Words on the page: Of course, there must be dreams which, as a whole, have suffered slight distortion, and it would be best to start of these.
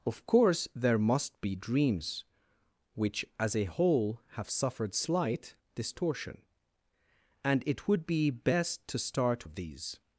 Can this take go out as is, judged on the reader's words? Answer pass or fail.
pass